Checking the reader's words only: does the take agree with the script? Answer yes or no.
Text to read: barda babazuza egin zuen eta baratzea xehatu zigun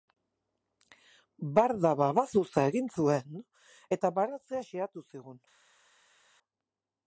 yes